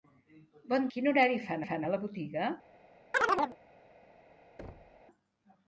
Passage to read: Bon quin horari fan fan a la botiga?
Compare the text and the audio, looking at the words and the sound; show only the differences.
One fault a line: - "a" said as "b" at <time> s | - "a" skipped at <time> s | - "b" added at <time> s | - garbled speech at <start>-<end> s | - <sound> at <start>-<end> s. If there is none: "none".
- chirp at 3.1-3.6 s
- thud at 4.6-5.0 s